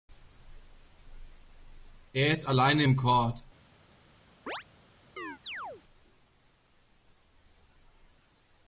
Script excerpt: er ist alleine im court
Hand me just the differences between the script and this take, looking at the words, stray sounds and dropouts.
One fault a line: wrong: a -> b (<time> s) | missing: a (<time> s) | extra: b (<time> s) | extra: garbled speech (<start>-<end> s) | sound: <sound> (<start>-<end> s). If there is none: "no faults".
sound: chirp (4.5-4.6 s)
sound: chirp (5.2-5.8 s)